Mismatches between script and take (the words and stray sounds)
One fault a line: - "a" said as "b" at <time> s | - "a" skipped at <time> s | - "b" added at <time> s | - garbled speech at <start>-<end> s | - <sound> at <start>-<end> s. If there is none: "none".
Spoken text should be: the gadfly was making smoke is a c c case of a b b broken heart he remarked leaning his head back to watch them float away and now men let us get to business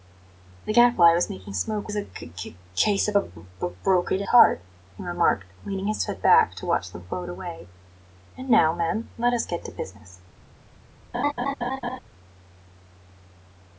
- laugh at 11.1-12.0 s